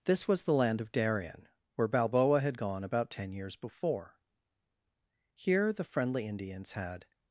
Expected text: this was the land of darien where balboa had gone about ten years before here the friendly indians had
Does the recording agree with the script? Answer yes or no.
yes